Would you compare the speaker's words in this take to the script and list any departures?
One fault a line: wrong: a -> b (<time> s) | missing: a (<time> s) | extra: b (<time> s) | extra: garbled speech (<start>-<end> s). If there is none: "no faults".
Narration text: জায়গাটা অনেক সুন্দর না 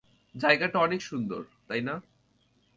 extra: তাই (1.7 s)